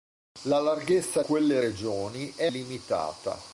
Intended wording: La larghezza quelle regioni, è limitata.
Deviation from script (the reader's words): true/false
false